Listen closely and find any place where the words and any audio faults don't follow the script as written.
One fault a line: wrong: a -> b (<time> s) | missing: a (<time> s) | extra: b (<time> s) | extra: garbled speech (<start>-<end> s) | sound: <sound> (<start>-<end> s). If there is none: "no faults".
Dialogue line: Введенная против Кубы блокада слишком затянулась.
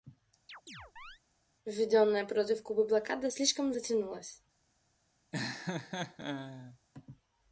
sound: chirp (0.5-1.2 s)
sound: laugh (5.3-6.8 s)